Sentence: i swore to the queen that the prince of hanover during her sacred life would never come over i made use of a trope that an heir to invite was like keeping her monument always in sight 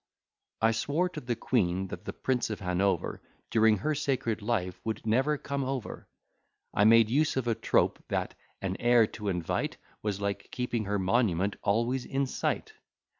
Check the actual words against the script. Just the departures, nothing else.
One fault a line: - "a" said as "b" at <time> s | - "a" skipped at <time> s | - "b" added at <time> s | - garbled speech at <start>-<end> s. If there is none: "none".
none